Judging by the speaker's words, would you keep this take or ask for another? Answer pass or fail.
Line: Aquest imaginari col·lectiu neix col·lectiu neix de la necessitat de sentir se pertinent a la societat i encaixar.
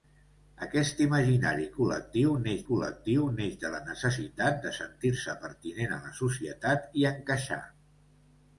pass